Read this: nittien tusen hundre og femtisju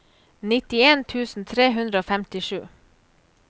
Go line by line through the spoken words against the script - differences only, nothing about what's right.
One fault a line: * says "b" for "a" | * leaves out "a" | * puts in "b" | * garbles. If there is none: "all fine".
* puts in "tre"